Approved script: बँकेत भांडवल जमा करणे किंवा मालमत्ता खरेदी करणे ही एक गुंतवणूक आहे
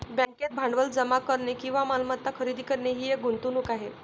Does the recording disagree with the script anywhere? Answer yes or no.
no